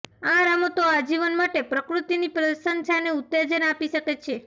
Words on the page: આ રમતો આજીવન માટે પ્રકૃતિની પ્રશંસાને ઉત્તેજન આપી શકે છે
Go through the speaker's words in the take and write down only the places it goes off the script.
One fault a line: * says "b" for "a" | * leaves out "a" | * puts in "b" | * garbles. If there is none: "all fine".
all fine